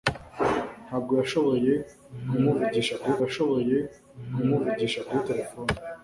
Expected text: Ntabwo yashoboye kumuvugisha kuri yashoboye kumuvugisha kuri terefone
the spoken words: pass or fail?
pass